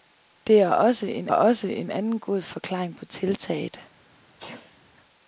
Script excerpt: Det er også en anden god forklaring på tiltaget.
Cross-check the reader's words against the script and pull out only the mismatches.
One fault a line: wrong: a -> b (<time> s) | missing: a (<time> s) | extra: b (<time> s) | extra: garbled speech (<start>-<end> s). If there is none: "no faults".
extra: også en (1.3 s)